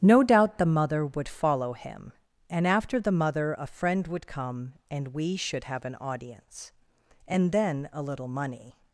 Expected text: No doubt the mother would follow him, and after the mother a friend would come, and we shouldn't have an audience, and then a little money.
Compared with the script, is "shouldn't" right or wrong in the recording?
wrong